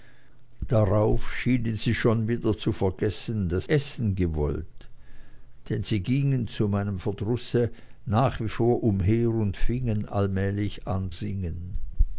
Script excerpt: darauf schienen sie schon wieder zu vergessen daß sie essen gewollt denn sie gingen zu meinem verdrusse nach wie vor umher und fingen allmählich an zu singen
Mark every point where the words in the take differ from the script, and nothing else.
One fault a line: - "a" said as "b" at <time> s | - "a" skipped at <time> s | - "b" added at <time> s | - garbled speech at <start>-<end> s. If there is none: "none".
- "sie" skipped at 3.7 s
- "zu" skipped at 11.1 s